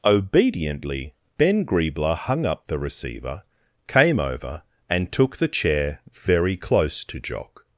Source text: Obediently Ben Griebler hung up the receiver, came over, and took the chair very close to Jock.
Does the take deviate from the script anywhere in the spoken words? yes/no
no